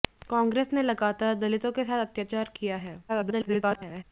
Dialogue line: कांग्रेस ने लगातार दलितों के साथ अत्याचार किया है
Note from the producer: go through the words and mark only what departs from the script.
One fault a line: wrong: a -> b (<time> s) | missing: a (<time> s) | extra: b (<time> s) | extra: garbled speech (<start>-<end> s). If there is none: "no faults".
extra: garbled speech (3.1-4.0 s)